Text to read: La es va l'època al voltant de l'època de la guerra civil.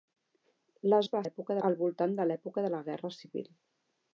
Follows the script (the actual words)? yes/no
yes